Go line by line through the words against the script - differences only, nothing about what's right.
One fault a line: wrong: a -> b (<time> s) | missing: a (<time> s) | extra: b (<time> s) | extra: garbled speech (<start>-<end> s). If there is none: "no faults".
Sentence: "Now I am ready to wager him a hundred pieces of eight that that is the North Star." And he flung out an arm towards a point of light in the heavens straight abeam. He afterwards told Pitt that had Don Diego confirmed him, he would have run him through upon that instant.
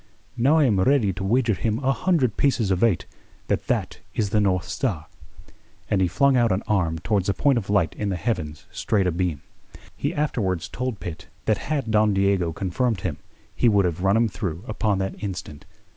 no faults